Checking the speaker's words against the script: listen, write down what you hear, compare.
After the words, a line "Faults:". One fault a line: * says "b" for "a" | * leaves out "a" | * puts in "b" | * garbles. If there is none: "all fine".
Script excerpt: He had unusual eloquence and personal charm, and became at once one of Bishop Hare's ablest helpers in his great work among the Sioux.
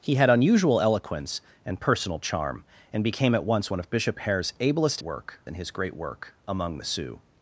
He had unusual eloquence and personal charm, and became at once one of Bishop Hare's ablest work in his great work among the Sioux.
Faults:
* says "work" for "helpers"